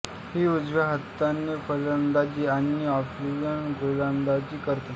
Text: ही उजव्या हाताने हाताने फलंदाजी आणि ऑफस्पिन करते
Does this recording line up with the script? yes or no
no